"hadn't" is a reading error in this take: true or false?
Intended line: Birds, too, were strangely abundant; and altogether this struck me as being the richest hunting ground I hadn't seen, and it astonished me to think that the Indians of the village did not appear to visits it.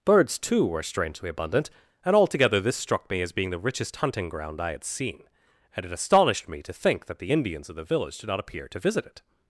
true